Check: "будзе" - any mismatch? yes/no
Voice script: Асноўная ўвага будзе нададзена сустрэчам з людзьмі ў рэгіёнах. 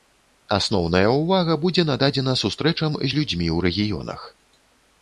no